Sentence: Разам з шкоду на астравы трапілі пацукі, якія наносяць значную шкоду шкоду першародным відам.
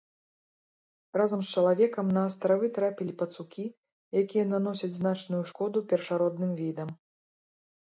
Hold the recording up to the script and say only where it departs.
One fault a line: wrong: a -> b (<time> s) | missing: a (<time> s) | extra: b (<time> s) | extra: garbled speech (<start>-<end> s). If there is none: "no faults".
wrong: шкоду -> чалавекам (1.6 s)
missing: шкоду (5.9 s)